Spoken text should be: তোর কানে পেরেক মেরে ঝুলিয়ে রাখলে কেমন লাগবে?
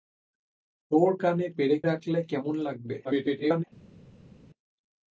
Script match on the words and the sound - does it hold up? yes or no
no